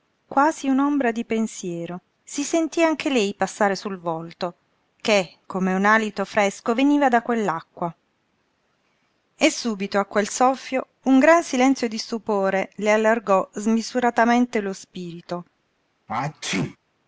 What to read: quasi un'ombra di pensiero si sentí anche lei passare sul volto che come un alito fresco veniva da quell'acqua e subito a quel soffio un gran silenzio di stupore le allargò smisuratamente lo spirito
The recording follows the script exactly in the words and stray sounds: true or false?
false